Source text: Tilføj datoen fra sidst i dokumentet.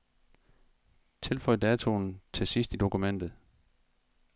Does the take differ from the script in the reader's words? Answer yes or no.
yes